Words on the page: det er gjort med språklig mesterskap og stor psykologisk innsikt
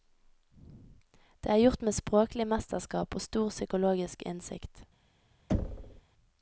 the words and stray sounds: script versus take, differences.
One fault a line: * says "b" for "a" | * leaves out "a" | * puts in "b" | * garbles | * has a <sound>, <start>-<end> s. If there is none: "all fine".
* has a thud, 5.5-6.0 s